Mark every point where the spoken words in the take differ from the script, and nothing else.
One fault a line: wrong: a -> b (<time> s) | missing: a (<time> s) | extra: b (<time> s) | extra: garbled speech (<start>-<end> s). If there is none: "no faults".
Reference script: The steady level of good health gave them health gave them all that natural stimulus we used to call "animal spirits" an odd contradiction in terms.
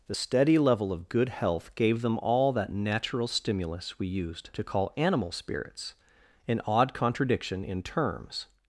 missing: health gave them (2.2 s)